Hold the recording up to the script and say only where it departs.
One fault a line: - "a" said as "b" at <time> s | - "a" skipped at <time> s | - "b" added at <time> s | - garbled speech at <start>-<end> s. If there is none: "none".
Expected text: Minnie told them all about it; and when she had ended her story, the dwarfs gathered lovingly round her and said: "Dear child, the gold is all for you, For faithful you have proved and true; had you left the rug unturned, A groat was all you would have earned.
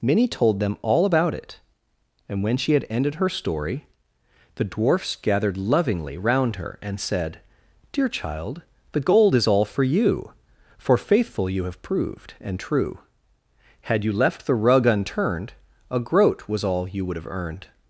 none